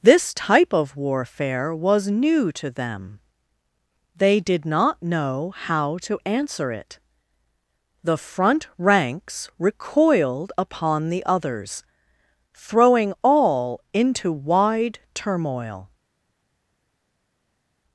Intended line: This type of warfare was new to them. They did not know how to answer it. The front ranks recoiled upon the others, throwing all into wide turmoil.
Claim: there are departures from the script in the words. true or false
false